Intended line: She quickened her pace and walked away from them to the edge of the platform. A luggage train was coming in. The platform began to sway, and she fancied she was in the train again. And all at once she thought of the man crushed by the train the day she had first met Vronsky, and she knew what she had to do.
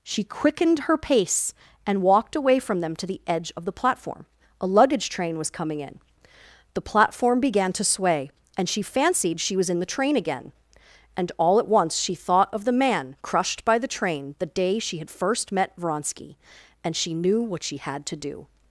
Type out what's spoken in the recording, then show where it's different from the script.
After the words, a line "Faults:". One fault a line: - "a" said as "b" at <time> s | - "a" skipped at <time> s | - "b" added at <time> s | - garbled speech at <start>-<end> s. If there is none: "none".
She quickened her pace and walked away from them to the edge of the platform. A luggage train was coming in. The platform began to sway, and she fancied she was in the train again. And all at once she thought of the man crushed by the train the day she had first met Vronsky, and she knew what she had to do.
Faults:
none